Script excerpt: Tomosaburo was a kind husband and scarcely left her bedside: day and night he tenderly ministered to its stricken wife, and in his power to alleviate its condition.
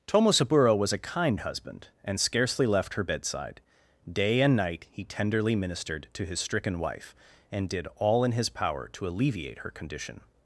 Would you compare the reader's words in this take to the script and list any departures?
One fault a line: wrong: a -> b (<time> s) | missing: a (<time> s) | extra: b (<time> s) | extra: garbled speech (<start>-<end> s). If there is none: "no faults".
wrong: its -> his (6.2 s)
extra: did all (7.7 s)
wrong: its -> her (9.6 s)